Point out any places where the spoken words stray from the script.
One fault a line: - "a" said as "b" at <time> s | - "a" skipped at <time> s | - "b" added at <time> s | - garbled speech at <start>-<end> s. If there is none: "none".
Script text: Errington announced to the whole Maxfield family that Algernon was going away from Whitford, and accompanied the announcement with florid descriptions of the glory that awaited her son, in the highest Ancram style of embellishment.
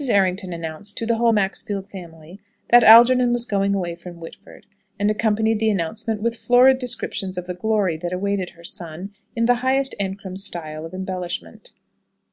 none